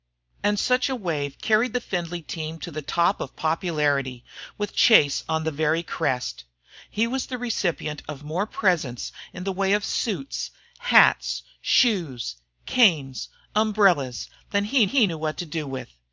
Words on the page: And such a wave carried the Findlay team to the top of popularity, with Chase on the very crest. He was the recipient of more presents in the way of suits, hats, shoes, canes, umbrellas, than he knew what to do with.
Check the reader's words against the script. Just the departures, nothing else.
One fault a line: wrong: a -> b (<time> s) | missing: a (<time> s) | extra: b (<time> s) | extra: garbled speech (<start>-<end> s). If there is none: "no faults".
extra: he (14.8 s)